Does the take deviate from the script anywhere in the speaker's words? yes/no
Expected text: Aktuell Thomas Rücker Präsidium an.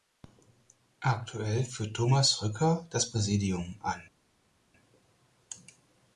yes